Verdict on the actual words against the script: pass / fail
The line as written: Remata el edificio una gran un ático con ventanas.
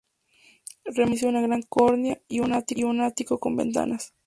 fail